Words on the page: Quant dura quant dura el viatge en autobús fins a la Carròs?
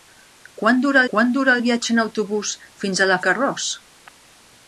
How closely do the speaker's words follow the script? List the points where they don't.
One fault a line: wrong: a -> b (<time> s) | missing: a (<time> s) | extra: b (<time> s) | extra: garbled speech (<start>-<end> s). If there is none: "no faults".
no faults